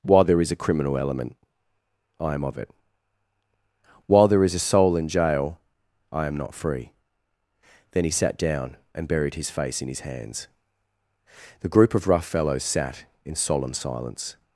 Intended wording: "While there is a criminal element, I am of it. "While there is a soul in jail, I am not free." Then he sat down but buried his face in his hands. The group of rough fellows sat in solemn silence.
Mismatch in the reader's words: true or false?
true